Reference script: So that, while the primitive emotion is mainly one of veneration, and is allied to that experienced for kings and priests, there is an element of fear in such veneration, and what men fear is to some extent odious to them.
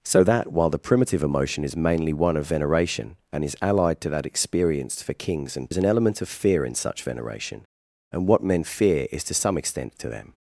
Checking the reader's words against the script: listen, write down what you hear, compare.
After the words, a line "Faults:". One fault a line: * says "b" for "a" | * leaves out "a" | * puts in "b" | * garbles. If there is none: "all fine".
So that, while the primitive emotion is mainly one of veneration, and is allied to that experienced for kings and is an element of fear in such veneration, and what men fear is to some extent to them.
Faults:
* leaves out "priests there"
* leaves out "odious"